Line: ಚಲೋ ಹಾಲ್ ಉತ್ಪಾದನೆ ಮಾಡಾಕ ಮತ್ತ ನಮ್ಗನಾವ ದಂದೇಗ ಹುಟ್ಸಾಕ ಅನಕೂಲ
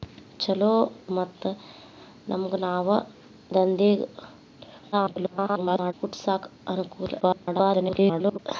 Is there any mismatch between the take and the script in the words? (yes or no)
yes